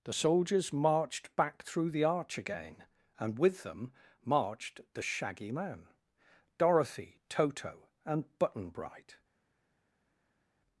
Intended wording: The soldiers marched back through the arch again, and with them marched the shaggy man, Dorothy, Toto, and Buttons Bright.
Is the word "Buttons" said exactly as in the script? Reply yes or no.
no